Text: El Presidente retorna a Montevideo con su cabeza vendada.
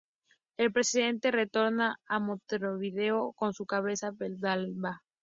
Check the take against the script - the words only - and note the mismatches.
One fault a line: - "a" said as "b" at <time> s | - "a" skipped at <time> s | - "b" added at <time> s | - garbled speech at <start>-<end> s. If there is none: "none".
none